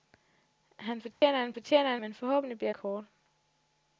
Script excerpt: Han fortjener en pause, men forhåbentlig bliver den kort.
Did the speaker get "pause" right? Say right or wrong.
wrong